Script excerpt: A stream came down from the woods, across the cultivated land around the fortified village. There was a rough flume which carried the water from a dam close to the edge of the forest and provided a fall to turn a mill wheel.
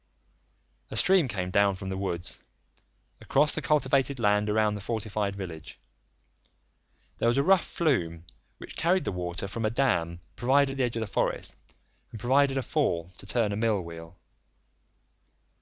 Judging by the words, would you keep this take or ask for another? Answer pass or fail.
fail